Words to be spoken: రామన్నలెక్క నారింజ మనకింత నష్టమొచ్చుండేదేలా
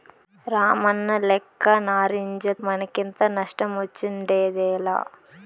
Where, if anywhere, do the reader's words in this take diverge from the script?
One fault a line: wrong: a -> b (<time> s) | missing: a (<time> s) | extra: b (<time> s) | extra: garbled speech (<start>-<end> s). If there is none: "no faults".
no faults